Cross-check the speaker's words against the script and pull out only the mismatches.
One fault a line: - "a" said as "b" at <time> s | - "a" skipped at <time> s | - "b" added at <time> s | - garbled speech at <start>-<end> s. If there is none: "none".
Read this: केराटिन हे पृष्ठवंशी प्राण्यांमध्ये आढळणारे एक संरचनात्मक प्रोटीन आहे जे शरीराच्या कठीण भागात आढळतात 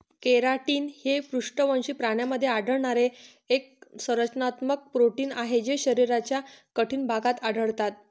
none